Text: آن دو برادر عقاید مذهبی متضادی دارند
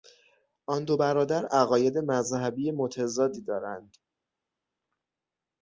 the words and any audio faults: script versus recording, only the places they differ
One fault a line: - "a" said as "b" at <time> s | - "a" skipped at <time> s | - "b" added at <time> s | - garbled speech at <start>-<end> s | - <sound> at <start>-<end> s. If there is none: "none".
none